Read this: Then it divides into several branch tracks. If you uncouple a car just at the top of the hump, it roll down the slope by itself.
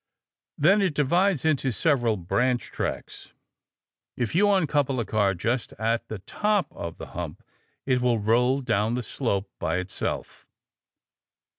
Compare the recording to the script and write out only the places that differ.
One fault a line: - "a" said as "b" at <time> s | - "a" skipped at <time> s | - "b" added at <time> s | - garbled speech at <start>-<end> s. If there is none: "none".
- "will" added at 8.0 s